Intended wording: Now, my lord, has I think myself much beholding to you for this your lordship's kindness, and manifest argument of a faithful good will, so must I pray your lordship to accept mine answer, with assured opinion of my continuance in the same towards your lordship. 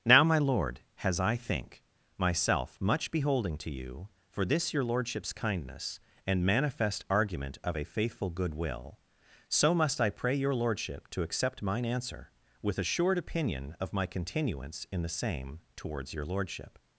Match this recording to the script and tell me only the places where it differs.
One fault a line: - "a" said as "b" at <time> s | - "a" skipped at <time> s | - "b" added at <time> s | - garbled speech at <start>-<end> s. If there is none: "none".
none